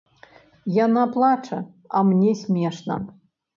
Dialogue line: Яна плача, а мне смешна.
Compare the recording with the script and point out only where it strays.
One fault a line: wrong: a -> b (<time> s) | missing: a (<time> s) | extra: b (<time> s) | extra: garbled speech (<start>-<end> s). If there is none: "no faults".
no faults